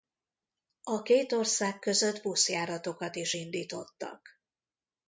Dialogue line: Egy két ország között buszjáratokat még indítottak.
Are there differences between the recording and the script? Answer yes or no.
yes